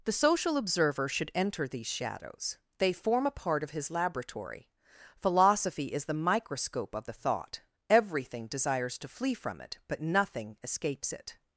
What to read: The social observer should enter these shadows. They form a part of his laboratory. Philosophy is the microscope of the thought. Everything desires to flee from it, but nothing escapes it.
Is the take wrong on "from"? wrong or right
right